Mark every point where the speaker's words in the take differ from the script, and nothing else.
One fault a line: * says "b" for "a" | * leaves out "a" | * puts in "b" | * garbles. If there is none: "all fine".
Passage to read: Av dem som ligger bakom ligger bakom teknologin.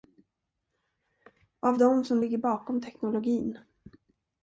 * leaves out "ligger bakom"